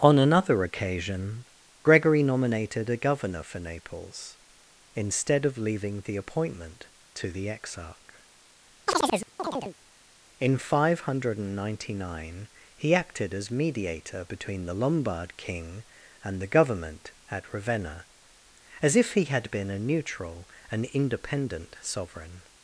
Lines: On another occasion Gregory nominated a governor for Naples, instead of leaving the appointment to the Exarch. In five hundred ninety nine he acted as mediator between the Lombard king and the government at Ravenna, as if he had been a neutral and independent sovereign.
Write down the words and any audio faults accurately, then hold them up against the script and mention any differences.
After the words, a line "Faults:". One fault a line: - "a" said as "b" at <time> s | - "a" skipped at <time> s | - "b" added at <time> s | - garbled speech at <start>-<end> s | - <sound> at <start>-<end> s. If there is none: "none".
On another occasion Gregory nominated a governor for Naples, instead of leaving the appointment to the Exarch. In five hundred ninety nine he acted as mediator between the Lombard king and the government at Ravenna, as if he had been a neutral and independent sovereign.
Faults:
- chirp at 8.9-9.8 s